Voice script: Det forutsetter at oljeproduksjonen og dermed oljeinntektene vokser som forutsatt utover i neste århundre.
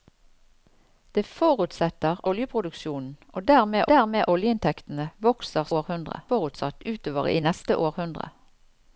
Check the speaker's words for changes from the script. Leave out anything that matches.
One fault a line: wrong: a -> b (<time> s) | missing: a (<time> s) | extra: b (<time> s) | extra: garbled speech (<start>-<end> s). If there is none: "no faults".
missing: at (2.2 s)
extra: dermed (3.9 s)
wrong: som -> århundre (5.8 s)